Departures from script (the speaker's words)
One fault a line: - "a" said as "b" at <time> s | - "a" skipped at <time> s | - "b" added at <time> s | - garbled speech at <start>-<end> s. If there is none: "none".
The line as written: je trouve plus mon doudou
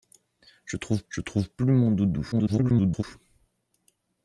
- "je trouve" added at 1.1 s
- garbled speech at 2.3-3.0 s